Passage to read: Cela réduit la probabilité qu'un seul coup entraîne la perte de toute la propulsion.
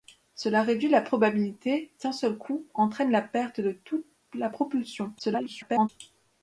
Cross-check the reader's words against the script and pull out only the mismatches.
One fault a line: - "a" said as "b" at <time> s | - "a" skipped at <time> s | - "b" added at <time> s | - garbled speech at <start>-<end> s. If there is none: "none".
- garbled speech at 5.2-5.9 s